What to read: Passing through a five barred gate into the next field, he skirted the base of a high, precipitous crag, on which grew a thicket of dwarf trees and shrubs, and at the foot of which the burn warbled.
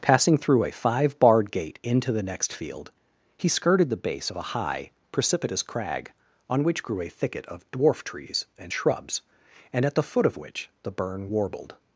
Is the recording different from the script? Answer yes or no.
no